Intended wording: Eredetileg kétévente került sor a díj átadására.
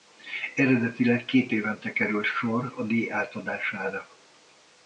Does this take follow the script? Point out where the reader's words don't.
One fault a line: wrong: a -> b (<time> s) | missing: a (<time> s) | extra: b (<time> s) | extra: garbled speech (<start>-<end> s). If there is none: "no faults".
no faults